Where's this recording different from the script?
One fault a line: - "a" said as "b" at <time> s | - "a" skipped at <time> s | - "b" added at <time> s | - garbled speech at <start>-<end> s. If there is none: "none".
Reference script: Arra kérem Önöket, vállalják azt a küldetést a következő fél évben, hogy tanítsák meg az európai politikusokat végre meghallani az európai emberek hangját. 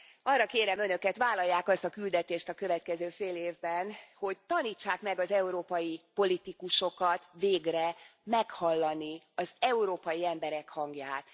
none